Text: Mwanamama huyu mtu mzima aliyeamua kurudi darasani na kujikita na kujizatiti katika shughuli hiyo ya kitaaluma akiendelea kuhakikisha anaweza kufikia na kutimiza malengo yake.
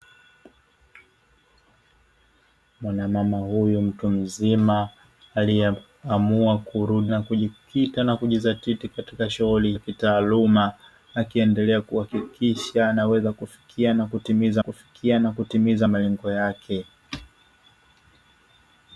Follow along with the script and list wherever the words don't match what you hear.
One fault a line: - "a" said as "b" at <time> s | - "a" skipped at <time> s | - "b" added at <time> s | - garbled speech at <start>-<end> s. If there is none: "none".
- "darasani" skipped at 7.1 s
- "hiyo" skipped at 9.7 s
- "kufikia na kutimiza" added at 14.6 s